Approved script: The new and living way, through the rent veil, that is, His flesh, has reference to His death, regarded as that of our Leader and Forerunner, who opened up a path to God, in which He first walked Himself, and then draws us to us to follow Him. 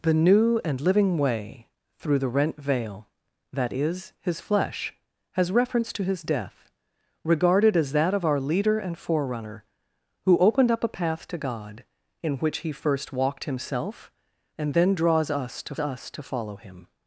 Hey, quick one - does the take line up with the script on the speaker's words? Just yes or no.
yes